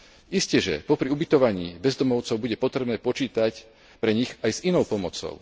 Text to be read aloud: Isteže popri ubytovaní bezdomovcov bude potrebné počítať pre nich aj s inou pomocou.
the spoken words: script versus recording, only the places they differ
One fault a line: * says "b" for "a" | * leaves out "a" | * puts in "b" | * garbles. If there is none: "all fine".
all fine